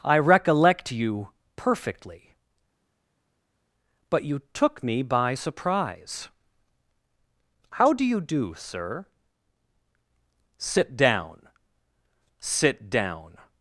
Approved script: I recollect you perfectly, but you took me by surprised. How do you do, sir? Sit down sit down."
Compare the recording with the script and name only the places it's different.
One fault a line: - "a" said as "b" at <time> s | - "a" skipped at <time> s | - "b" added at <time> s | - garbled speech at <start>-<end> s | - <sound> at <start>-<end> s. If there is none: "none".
- "surprised" said as "surprise" at 5.3 s